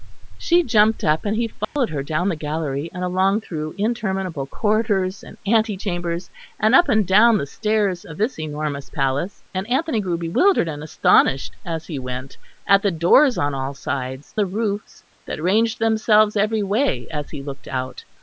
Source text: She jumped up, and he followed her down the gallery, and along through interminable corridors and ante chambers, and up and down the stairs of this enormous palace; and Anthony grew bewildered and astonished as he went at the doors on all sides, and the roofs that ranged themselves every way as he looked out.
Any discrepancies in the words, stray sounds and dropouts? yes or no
yes